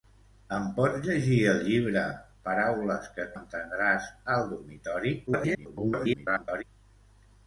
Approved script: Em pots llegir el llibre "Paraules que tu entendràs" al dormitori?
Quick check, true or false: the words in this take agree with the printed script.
false